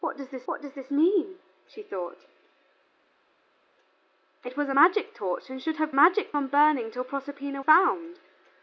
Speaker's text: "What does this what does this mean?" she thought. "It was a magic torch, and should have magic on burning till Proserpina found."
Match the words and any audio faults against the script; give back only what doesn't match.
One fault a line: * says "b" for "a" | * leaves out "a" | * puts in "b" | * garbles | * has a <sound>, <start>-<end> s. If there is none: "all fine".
all fine